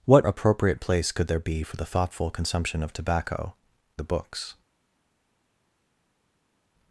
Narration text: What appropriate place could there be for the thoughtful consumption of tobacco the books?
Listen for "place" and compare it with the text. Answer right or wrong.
right